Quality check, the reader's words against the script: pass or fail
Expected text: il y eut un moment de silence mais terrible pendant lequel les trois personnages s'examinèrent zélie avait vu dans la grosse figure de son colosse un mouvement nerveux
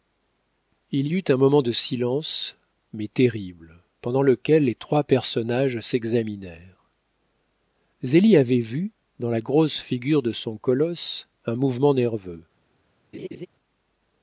pass